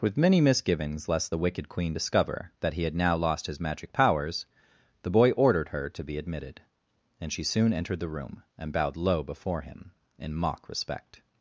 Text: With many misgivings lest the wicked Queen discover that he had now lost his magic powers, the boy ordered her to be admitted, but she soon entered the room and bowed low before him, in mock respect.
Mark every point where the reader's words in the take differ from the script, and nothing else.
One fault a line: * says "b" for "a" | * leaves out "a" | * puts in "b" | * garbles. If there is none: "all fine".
* says "and" for "but"